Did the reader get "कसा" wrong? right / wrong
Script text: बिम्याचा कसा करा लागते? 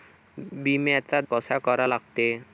right